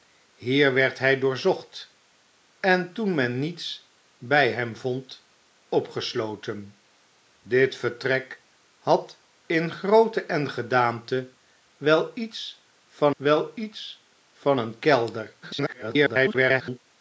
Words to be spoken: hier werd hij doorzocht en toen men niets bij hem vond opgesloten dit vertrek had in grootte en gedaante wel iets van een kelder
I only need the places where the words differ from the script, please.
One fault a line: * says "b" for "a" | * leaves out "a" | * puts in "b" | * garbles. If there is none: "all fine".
* puts in "wel iets van"
* garbles